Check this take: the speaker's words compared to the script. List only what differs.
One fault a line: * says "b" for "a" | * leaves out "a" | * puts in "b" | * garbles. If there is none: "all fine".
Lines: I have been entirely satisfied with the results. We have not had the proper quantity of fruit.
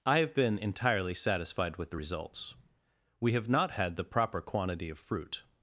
all fine